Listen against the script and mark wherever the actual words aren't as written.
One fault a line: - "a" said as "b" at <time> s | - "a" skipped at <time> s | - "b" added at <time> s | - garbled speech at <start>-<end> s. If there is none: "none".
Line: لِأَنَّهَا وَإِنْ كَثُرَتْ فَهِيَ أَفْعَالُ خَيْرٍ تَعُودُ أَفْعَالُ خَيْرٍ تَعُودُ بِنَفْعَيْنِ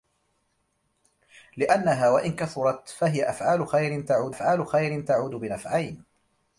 none